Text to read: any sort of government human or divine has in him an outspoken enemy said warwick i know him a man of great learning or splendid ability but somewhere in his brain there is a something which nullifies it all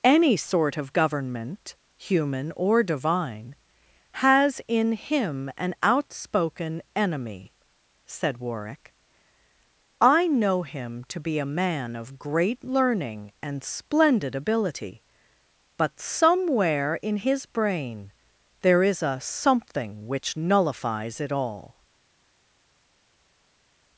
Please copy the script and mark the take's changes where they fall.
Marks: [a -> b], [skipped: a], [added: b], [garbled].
any sort of government human or divine has in him an outspoken enemy said warwick i know him [added: to be] a man of great learning [or -> and] splendid ability but somewhere in his brain there is a something which nullifies it all